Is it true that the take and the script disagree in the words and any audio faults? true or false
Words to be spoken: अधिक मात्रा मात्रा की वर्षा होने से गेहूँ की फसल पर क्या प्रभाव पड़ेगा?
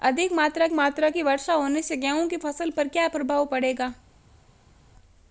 false